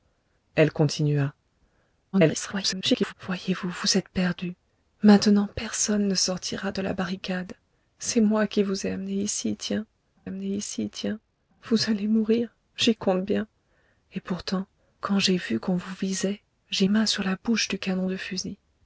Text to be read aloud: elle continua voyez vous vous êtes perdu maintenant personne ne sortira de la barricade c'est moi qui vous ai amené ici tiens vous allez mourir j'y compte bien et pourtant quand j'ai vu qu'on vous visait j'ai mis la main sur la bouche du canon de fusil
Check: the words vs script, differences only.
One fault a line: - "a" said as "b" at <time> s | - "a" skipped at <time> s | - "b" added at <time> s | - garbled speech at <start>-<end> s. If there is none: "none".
- garbled speech at 2.1-3.1 s
- "amené ici tiens" added at 10.2 s
- "mis la" skipped at 16.9 s